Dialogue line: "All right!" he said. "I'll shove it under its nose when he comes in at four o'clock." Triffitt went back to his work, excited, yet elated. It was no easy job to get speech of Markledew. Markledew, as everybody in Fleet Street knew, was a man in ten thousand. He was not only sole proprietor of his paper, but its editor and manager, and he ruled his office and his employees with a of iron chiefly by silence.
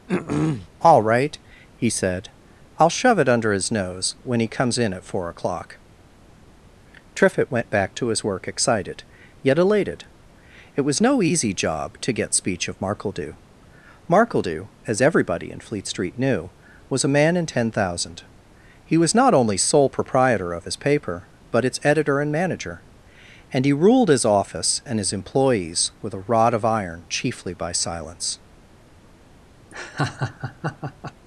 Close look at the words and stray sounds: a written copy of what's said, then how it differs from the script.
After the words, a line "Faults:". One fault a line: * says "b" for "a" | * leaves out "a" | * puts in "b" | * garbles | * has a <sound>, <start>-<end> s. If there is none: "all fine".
"All right!" he said. "I'll shove it under his nose when he comes in at four o'clock." Triffitt went back to his work, excited, yet elated. It was no easy job to get speech of Markledew. Markledew, as everybody in Fleet Street knew, was a man in ten thousand. He was not only sole proprietor of his paper, but its editor and manager, and he ruled his office and his employees with a rod of iron chiefly by silence.
Faults:
* has a throat clearing, 0.1-0.7 s
* says "his" for "its"
* puts in "rod"
* has a laugh, 29.7-31.1 s